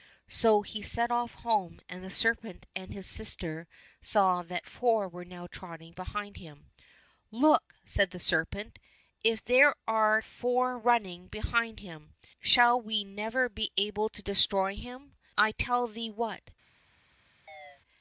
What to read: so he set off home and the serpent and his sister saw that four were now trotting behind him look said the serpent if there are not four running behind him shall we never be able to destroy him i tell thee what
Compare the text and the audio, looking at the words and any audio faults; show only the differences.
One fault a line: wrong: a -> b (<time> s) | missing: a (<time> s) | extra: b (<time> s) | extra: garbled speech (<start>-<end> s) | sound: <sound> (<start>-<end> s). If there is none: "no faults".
missing: not (10.2 s)
sound: chirp (17.5-17.8 s)